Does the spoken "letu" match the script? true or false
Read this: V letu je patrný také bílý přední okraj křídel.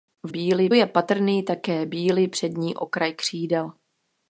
false